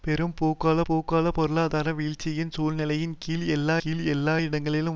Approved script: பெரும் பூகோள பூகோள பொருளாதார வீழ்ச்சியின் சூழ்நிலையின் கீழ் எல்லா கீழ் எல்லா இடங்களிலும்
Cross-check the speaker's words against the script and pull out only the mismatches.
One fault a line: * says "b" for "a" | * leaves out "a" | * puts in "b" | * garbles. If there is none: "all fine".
all fine